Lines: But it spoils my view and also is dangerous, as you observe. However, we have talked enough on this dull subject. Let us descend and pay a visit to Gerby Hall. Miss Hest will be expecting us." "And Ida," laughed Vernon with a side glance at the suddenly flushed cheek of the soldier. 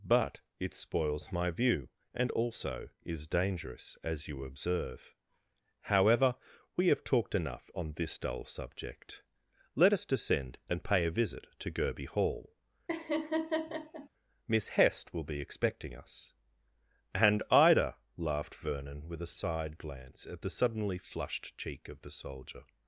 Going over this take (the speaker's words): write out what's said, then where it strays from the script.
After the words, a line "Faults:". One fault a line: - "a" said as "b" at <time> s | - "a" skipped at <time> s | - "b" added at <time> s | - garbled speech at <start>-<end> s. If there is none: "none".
But it spoils my view and also is dangerous, as you observe. However, we have talked enough on this dull subject. Let us descend and pay a visit to Gerby Hall. Miss Hest will be expecting us." "And Ida," laughed Vernon with a side glance at the suddenly flushed cheek of the soldier.
Faults:
none